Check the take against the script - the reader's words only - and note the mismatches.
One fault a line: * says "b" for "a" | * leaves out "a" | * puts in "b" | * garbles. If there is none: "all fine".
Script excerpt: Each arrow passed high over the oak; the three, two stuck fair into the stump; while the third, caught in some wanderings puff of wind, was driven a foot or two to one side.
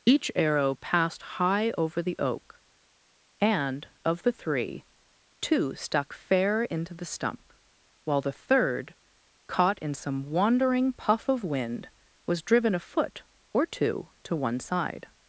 * puts in "and of"
* says "wandering" for "wanderings"